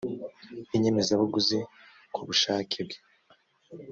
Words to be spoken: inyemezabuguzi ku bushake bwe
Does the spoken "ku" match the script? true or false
true